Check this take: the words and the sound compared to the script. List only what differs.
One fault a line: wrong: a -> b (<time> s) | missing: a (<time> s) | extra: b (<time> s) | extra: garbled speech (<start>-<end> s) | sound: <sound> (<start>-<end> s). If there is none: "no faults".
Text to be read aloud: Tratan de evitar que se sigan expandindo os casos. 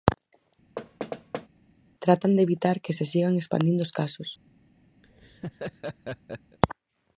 sound: thud (0.8-1.5 s)
sound: laugh (5.0-6.6 s)